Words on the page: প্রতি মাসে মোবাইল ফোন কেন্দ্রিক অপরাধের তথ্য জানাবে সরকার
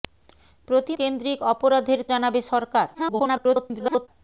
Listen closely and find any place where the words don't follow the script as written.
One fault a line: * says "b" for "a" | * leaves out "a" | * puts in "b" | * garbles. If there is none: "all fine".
* leaves out "মাসে মোবাইল ফোন"
* leaves out "তথ্য"
* garbles